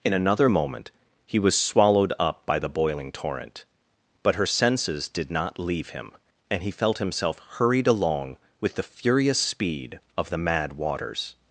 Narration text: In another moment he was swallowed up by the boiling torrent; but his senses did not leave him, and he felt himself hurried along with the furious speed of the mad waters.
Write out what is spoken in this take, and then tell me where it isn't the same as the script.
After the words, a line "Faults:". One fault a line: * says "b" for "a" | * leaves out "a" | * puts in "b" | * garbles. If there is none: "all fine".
In another moment he was swallowed up by the boiling torrent; but her senses did not leave him, and he felt himself hurried along with the furious speed of the mad waters.
Faults:
* says "her" for "his"